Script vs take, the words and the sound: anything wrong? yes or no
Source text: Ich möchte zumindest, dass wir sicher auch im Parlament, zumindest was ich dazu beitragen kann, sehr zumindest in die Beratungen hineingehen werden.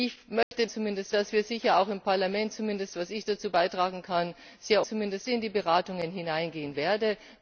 yes